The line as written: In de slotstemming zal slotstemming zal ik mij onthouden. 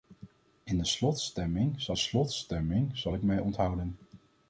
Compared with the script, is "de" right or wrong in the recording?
right